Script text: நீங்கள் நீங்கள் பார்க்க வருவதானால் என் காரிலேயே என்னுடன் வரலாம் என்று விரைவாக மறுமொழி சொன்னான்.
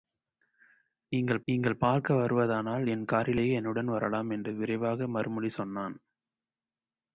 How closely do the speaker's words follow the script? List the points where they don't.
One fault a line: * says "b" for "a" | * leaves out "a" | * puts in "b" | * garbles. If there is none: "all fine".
all fine